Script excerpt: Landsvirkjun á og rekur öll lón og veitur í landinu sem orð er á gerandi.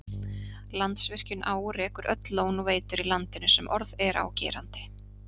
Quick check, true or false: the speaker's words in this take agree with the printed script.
true